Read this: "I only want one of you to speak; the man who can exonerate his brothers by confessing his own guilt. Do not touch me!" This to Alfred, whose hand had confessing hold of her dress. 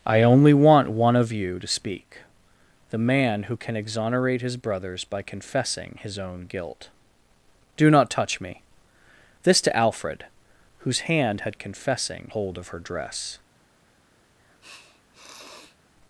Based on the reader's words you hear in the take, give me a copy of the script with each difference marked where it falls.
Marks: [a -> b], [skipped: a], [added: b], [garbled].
"I only want one of you to speak; the man who can exonerate his brothers by confessing his own guilt. Do not touch me!" This to Alfred, whose hand had confessing hold of her dress.